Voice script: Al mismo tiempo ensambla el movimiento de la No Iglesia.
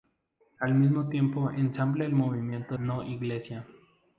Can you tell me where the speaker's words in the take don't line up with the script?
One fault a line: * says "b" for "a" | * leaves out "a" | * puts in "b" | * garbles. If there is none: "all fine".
* leaves out "de la"